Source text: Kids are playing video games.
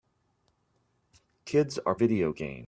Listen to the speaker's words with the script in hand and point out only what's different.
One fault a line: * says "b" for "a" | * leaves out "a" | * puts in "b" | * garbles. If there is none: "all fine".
* leaves out "playing"